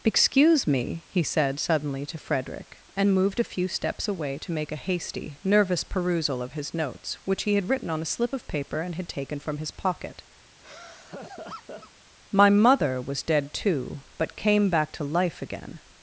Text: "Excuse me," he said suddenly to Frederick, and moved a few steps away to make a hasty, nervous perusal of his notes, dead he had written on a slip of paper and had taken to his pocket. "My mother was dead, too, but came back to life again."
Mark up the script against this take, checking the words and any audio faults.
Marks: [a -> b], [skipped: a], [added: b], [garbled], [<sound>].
"Excuse me," he said suddenly to Frederick, and moved a few steps away to make a hasty, nervous perusal of his notes, [dead -> which] he had written on a slip of paper and had taken [to -> from] his pocket. [laugh] "My mother was dead, too, but came back to life again."